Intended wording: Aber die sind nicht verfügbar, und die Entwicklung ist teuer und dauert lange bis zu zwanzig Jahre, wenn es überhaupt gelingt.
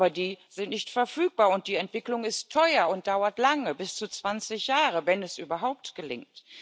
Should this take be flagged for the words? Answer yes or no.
no